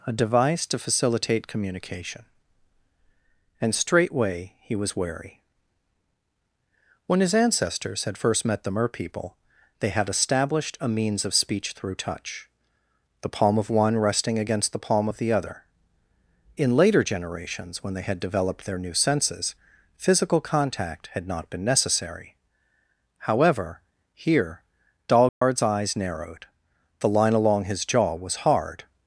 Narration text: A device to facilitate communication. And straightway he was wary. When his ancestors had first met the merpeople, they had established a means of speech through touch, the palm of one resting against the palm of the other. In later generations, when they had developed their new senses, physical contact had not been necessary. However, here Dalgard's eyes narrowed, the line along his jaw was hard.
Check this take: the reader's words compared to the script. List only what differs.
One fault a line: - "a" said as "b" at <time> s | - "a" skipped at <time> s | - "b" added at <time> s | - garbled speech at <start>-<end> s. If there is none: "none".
none